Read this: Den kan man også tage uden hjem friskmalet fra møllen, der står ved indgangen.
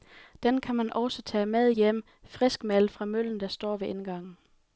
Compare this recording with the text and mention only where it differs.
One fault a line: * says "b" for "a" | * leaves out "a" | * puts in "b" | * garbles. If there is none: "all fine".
* says "med" for "uden"